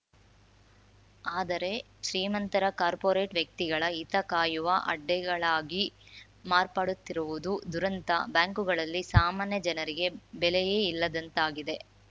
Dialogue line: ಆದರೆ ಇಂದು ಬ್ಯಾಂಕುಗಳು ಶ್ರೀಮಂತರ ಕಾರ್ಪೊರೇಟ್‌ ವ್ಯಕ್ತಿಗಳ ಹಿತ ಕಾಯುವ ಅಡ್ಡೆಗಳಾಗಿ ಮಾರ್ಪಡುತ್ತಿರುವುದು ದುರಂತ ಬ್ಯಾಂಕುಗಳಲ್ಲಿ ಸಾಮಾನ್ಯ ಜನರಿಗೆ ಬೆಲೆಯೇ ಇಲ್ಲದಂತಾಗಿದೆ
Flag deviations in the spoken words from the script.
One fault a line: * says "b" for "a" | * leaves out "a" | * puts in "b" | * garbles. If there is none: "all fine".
* leaves out "ಇಂದು ಬ್ಯಾಂಕುಗಳು"